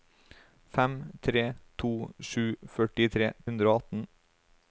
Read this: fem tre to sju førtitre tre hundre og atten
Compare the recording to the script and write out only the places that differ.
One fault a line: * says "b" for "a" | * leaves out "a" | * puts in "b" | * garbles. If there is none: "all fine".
* leaves out "tre"